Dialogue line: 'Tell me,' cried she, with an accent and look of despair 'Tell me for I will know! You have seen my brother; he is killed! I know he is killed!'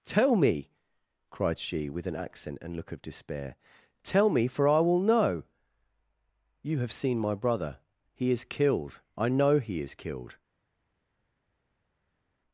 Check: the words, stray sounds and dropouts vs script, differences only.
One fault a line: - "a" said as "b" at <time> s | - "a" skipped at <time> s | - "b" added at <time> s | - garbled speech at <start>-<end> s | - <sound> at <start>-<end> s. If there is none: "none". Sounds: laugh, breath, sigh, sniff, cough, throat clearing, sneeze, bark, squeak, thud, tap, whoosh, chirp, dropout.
none